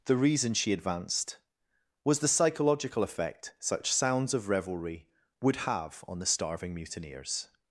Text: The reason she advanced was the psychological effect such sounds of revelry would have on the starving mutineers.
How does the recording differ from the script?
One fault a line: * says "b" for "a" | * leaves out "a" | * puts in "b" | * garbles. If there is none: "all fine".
all fine